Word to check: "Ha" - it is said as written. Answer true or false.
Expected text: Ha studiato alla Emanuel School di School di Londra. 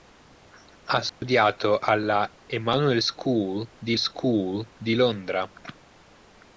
true